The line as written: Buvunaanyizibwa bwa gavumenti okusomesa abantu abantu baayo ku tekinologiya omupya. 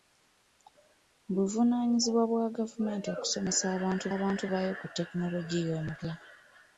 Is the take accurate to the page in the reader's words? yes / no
yes